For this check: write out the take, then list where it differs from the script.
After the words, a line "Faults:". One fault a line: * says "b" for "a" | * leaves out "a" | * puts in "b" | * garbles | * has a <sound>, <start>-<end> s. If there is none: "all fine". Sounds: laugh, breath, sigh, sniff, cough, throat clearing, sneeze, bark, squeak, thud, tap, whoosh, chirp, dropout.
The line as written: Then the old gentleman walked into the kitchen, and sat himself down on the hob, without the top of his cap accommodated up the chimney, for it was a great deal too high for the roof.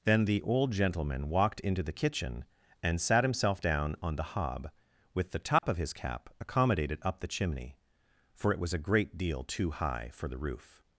Then the old gentleman walked into the kitchen, and sat himself down on the hob, with the top of his cap accommodated up the chimney, for it was a great deal too high for the roof.
Faults:
* says "with" for "without"
* has a dropout, 5.6-5.6 s